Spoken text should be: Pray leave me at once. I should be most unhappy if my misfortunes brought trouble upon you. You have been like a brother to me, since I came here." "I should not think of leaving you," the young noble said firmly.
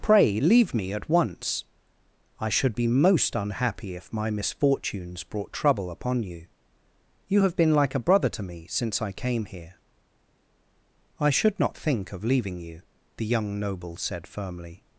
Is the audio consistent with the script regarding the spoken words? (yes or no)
yes